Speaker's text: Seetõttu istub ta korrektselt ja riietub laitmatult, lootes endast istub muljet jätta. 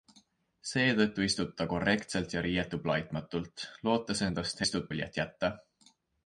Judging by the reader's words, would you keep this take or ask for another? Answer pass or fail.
pass